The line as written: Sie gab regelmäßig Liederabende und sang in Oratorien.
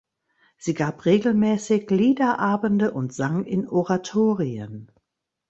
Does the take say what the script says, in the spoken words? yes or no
yes